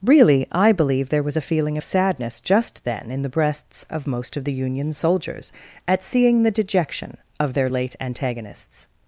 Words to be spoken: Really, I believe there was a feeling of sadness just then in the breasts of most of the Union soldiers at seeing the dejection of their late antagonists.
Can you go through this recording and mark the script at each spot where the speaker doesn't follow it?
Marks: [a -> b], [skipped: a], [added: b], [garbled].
Really, I believe there was a feeling of sadness just then in the breasts of most of the Union soldiers at seeing the dejection of their late antagonists.